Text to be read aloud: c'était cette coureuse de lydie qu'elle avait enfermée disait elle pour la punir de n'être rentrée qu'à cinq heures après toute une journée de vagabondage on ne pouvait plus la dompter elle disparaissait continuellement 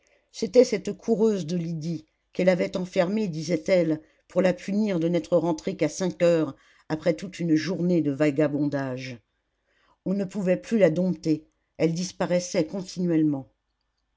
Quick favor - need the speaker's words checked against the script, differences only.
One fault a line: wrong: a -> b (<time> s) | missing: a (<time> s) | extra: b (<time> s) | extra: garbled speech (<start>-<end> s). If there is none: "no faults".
no faults